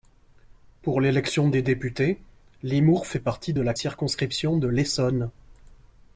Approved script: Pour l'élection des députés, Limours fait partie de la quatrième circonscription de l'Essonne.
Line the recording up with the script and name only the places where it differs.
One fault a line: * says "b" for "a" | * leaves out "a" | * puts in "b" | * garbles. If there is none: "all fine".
* leaves out "quatrième"